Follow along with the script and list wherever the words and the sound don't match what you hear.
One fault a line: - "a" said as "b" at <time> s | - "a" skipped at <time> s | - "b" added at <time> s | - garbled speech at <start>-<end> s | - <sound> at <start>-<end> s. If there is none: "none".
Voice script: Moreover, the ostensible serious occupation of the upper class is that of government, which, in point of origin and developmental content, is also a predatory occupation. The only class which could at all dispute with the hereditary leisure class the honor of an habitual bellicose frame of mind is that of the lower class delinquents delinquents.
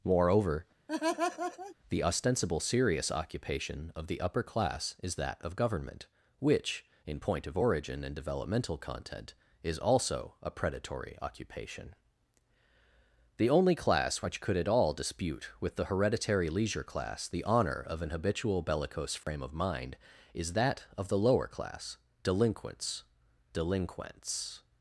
- laugh at 0.9-1.8 s
- dropout at 19.2-19.3 s